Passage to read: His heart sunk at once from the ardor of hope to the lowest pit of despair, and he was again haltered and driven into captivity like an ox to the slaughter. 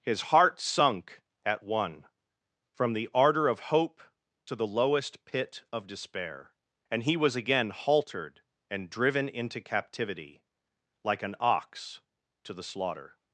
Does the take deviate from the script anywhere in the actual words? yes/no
yes